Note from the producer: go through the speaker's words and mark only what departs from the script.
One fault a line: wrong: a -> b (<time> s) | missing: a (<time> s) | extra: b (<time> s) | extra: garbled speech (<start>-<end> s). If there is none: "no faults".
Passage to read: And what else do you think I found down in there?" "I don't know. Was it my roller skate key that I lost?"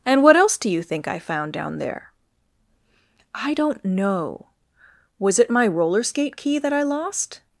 missing: in (1.8 s)